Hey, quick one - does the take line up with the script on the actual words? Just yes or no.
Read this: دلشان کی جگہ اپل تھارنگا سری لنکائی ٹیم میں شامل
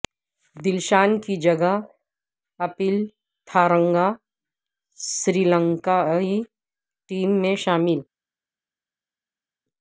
yes